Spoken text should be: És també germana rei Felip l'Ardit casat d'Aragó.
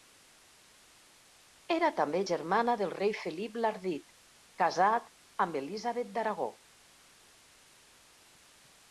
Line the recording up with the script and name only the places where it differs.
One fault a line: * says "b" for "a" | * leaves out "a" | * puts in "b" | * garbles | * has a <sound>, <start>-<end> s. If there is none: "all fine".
* says "Era" for "És"
* puts in "del"
* puts in "amb Elisabet"